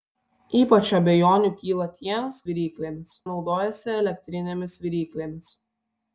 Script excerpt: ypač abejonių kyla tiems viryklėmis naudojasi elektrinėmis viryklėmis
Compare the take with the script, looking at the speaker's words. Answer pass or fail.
pass